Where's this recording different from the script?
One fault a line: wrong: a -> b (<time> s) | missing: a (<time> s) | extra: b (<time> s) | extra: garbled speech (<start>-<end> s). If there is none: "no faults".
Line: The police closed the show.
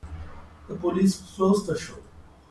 no faults